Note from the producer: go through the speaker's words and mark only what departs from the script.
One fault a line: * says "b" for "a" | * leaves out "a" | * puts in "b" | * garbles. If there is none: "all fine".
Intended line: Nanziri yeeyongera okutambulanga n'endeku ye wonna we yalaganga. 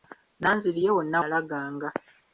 * leaves out "yeeyongera okutambulanga n'endeku"
* leaves out "we"